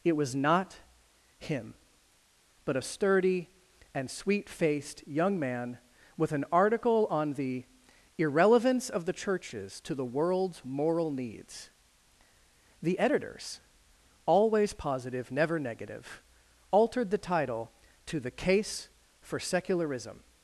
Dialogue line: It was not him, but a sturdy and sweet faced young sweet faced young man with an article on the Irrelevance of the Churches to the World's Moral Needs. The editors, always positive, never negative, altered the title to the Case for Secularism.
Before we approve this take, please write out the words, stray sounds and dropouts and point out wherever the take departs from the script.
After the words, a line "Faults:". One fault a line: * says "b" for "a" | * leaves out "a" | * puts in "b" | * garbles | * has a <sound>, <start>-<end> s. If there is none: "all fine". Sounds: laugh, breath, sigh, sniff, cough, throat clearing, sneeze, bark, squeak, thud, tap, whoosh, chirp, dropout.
It was not him, but a sturdy and sweet faced young man with an article on the Irrelevance of the Churches to the World's Moral Needs. The editors, always positive, never negative, altered the title to the Case for Secularism.
Faults:
* leaves out "sweet faced young"